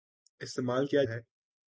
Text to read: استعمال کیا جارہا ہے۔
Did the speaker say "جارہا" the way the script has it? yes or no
no